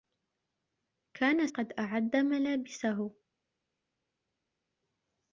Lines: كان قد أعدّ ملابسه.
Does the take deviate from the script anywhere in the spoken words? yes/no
no